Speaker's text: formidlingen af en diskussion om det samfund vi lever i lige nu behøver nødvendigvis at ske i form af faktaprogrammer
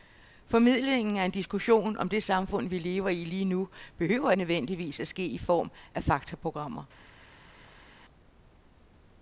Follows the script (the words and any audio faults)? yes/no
yes